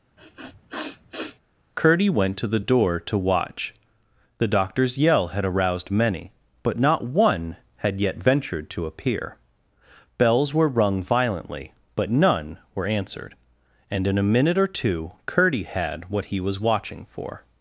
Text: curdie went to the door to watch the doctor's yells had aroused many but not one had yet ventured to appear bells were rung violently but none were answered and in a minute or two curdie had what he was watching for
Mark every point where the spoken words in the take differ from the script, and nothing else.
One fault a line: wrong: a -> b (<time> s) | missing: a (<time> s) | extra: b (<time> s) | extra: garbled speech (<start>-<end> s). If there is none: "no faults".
wrong: yells -> yell (5.0 s)